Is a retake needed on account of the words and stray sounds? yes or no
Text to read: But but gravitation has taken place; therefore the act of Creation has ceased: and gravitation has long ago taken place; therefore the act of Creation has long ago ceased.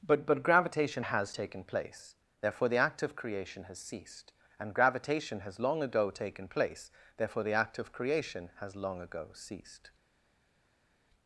no